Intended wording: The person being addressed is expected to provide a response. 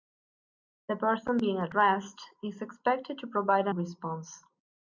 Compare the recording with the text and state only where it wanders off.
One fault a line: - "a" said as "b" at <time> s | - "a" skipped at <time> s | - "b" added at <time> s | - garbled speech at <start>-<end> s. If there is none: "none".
none